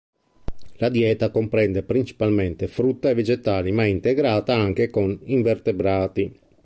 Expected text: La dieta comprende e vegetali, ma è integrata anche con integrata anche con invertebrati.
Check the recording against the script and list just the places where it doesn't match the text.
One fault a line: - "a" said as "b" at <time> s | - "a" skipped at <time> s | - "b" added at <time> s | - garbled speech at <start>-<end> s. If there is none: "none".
- "principalmente frutta" added at 1.8 s
- "integrata anche con" skipped at 5.2 s